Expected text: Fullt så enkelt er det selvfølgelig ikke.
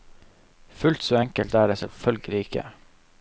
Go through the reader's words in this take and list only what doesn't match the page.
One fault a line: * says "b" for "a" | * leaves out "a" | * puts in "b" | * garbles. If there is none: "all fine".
all fine